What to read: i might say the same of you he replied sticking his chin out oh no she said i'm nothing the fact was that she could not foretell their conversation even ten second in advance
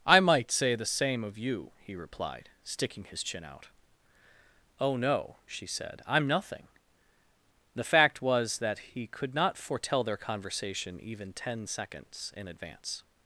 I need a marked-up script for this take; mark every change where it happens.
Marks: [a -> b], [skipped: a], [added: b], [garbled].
i might say the same of you he replied sticking his chin out oh no she said i'm nothing the fact was that [she -> he] could not foretell their conversation even ten [second -> seconds] in advance